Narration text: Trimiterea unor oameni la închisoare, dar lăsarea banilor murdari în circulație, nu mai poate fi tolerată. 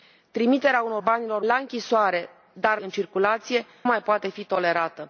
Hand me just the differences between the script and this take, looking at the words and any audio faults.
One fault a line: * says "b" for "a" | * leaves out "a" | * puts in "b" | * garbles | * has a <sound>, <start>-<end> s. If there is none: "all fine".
* says "banilor" for "oameni"
* leaves out "lăsarea banilor murdari"
* leaves out "nu"